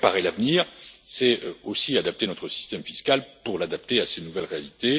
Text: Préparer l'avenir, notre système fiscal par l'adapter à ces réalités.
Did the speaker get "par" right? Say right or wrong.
wrong